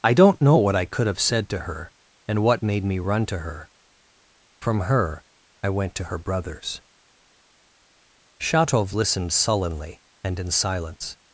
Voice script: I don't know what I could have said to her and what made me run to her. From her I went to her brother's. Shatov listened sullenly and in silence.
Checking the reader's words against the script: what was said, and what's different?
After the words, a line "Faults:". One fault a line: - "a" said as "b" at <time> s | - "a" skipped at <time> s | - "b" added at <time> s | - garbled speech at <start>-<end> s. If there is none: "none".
I don't know what I could have said to her and what made me run to her. From her I went to her brother's. Shatov listened sullenly and in silence.
Faults:
none